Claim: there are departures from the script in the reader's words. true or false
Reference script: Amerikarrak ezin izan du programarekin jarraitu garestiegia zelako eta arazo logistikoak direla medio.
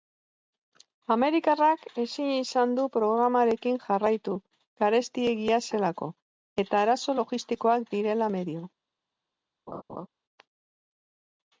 false